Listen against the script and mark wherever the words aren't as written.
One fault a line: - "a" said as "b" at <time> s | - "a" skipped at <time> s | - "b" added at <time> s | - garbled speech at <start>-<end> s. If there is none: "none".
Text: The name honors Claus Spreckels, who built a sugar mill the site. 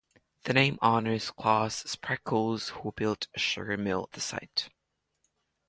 none